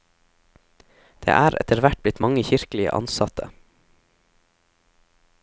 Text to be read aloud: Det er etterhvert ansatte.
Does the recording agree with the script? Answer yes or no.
no